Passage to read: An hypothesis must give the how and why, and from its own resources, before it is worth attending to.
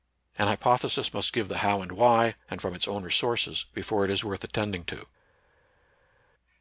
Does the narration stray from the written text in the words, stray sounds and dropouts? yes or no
no